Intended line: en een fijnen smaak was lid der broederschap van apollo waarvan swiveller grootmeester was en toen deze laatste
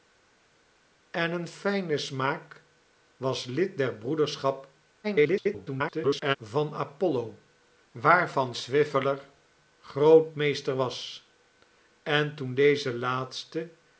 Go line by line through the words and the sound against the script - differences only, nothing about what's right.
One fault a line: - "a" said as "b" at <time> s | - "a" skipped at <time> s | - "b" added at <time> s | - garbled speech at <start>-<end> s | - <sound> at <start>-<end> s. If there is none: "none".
- garbled speech at 5.0-6.4 s